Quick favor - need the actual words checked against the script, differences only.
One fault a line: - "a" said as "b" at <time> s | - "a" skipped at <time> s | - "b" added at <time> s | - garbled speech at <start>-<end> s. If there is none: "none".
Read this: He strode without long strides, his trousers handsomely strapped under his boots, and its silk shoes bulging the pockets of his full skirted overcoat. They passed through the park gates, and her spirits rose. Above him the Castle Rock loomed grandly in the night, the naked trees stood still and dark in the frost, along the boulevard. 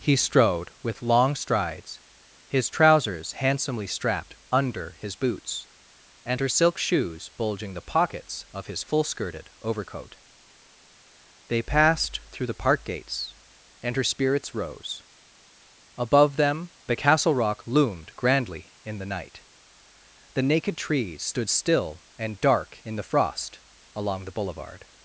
- "without" said as "with" at 0.8 s
- "its" said as "her" at 6.4 s
- "him" said as "them" at 16.4 s